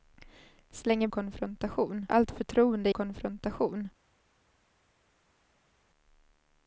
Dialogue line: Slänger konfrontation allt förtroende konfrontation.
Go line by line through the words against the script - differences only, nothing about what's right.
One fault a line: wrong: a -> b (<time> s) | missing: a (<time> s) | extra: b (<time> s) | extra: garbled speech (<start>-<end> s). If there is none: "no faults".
no faults